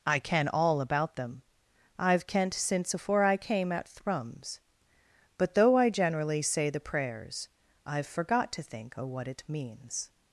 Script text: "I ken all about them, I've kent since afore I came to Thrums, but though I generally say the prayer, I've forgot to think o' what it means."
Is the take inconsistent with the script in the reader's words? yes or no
yes